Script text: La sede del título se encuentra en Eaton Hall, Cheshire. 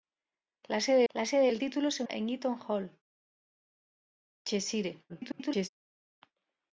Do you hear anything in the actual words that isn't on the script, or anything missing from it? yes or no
yes